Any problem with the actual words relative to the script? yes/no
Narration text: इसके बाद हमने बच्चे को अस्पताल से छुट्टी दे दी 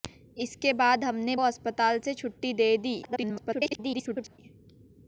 yes